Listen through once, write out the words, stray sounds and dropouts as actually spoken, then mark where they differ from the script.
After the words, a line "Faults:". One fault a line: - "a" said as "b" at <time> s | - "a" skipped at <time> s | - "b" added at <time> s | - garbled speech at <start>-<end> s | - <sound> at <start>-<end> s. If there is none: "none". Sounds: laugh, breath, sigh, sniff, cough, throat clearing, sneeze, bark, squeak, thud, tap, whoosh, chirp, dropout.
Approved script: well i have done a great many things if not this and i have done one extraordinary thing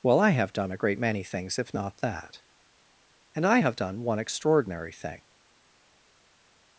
well i have done a great many things if not that and i have done one extraordinary thing
Faults:
- "this" said as "that" at 2.0 s